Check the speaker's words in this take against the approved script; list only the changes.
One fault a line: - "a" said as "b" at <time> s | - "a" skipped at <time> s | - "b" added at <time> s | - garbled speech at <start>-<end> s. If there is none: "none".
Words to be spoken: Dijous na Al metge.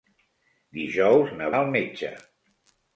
none